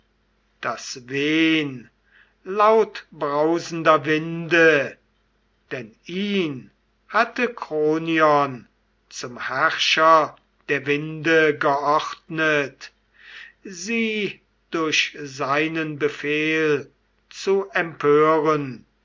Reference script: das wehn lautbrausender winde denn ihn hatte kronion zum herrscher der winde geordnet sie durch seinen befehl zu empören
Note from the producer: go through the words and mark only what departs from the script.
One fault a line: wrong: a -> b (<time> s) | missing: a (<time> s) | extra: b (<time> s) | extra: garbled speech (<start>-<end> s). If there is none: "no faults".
no faults